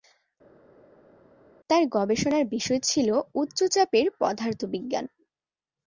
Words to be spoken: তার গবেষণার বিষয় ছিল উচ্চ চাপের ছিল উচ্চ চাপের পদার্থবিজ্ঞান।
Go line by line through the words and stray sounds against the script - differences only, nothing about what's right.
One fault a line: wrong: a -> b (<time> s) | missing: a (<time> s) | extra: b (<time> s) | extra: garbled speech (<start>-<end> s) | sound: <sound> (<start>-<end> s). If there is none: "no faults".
missing: ছিল উচ্চ চাপের (4.1 s)